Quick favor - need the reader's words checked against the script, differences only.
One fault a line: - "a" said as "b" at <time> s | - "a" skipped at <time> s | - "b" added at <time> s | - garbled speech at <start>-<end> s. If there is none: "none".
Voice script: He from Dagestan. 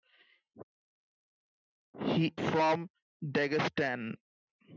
none